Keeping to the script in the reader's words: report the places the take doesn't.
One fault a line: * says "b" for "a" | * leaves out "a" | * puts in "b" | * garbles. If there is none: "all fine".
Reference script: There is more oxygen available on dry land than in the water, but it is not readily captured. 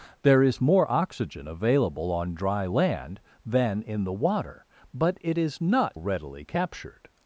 all fine